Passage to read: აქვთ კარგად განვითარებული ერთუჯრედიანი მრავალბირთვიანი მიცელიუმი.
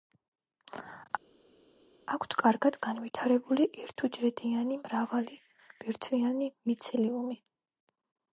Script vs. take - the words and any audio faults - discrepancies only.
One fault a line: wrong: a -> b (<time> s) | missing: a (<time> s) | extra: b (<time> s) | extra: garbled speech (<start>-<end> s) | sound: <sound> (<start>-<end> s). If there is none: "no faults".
no faults